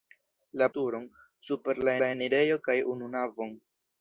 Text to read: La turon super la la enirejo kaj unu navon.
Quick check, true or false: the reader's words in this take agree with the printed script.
true